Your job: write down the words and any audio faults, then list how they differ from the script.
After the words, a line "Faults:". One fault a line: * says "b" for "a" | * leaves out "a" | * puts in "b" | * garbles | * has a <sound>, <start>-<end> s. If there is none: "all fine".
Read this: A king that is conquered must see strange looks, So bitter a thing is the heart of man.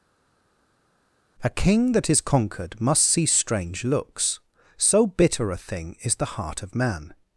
A king that is conquered must see strange looks, So bitter a thing is the heart of man.
Faults:
all fine